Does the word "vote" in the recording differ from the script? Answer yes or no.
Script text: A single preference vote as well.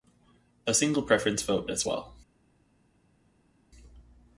no